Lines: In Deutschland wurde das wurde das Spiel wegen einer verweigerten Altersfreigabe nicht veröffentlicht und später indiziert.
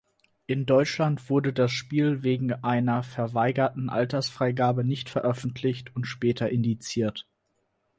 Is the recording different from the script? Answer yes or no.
yes